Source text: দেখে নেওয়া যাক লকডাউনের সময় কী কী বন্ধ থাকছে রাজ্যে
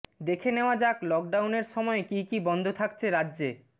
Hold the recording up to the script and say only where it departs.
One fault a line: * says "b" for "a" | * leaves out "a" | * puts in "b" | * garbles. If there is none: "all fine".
all fine